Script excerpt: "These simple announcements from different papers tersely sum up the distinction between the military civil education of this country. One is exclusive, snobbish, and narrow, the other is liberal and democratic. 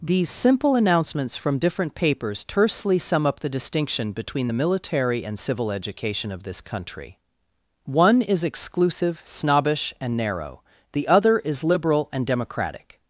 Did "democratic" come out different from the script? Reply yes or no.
no